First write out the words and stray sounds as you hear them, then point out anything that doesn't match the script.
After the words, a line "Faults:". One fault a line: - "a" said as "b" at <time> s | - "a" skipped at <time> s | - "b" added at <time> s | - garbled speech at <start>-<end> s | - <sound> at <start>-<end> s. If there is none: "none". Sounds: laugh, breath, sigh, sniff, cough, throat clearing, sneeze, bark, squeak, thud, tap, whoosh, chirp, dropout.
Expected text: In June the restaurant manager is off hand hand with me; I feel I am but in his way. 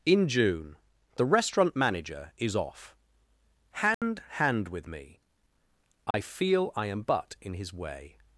In June the restaurant manager is off hand hand with me; I feel I am but in his way.
Faults:
- dropout at 3.9-4.0 s
- dropout at 6.1-6.1 s